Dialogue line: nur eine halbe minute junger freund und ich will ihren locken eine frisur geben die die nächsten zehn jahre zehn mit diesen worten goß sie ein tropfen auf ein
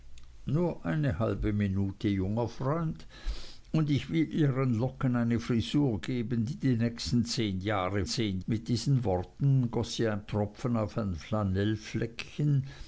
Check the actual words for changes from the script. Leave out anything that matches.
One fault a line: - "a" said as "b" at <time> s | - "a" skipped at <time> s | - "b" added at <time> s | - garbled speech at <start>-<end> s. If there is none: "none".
none